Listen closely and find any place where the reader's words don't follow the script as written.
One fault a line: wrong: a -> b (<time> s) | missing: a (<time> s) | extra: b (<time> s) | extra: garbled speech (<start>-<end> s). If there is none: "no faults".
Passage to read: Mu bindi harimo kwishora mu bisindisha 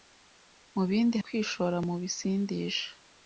missing: harimo (1.2 s)